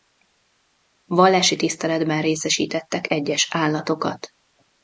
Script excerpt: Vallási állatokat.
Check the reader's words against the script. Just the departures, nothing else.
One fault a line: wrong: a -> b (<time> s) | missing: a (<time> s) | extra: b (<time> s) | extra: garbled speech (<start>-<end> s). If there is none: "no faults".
extra: tiszteletben részesítettek egyes (1.6 s)